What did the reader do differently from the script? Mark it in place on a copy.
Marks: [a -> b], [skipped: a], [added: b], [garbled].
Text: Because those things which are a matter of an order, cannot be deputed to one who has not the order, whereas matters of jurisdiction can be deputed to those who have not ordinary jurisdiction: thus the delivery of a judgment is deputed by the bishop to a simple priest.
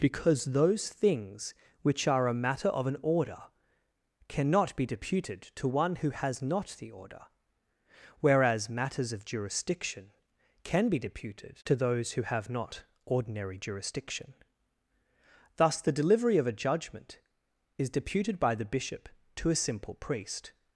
Because those things which are a matter of an order, cannot be deputed to one who has not the order, whereas matters of jurisdiction can be deputed to those who have not ordinary jurisdiction: thus the delivery of a judgment is deputed by the bishop to a simple priest.